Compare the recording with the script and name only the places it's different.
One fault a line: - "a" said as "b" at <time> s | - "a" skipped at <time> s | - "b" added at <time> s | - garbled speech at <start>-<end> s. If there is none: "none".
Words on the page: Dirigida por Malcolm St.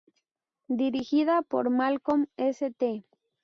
none